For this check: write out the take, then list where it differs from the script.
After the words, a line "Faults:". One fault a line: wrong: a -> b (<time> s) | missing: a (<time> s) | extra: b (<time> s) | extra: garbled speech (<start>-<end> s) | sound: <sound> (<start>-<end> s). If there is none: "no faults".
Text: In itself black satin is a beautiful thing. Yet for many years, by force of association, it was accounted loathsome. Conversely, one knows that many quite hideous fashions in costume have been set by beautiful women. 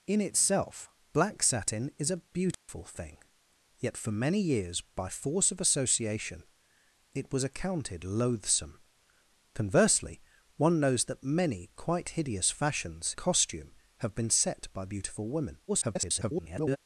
In itself black satin is a beautiful thing. Yet for many years, by force of association, it was accounted loathsome. Conversely, one knows that many quite hideous fashions costume have been set by beautiful women. [garbled]
Faults:
sound: dropout (2.5-2.7 s)
missing: in (13.2 s)
extra: garbled speech (15.7-16.8 s)